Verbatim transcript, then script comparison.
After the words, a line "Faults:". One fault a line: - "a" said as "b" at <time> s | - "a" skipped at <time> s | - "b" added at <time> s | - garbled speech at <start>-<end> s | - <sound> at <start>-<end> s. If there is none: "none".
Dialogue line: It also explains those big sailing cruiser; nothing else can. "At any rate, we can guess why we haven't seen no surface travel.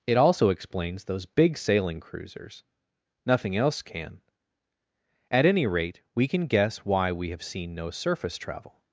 It also explains those big sailing cruisers; nothing else can. "At any rate, we can guess why we have seen no surface travel.
Faults:
- "cruiser" said as "cruisers" at 2.0 s
- "haven't" said as "have" at 7.3 s